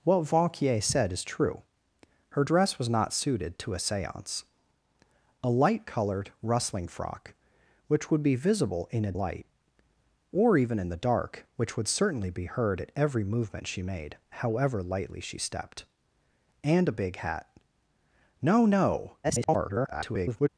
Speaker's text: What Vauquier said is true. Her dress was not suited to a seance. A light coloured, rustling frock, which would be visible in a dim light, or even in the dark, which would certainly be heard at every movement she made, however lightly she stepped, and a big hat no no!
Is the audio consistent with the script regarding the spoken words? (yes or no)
no